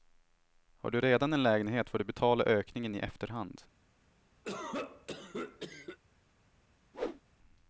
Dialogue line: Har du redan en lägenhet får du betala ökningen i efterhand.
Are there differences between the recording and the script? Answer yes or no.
no